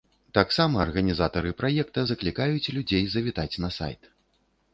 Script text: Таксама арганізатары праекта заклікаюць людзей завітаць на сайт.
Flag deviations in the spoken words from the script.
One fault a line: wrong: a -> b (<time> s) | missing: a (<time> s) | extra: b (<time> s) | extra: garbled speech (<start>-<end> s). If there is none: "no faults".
no faults